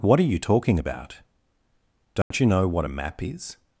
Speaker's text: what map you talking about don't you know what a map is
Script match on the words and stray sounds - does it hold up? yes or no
no